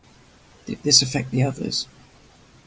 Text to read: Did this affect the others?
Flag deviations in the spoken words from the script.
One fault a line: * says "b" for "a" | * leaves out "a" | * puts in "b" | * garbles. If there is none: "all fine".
all fine